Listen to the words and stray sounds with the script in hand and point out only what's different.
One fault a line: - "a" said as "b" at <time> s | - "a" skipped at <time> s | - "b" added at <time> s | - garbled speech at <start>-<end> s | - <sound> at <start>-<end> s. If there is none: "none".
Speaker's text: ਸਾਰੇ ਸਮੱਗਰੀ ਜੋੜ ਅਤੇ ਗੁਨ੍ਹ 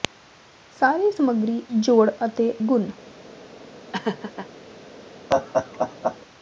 - laugh at 3.9-4.5 s
- laugh at 5.3-6.2 s